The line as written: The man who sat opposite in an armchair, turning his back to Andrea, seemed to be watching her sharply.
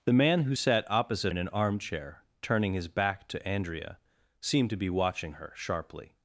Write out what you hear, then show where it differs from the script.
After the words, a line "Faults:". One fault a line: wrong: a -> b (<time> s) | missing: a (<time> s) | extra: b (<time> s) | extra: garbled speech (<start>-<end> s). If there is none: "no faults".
The man who sat opposite in an armchair, turning his back to Andrea, seemed to be watching her sharply.
Faults:
no faults